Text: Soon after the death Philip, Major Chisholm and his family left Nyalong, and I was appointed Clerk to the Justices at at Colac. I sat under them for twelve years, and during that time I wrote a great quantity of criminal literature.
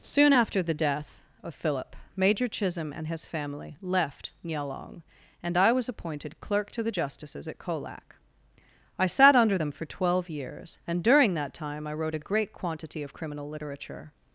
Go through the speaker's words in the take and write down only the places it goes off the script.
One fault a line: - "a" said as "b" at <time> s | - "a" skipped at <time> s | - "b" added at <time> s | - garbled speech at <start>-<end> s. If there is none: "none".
- "of" added at 1.4 s
- "at" skipped at 7.6 s